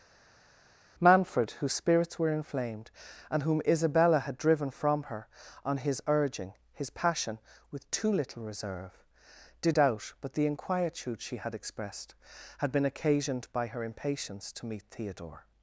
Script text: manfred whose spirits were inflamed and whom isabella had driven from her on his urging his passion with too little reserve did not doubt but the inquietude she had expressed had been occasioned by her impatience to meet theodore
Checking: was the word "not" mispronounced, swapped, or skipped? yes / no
yes